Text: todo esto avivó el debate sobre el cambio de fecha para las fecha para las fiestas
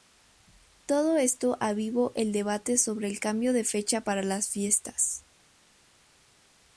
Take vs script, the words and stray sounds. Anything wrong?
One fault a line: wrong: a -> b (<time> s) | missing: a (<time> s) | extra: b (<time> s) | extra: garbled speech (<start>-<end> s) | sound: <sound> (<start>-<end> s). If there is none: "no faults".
missing: fecha para las (4.5 s)